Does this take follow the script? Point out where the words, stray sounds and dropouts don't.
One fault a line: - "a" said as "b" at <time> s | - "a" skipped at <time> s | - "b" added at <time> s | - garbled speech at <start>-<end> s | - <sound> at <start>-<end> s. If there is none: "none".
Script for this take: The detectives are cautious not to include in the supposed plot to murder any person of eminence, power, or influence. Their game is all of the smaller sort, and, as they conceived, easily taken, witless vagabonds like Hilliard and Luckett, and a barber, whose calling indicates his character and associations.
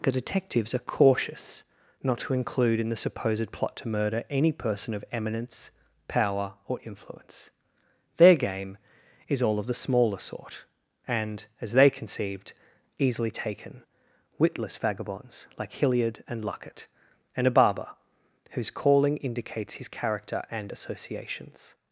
none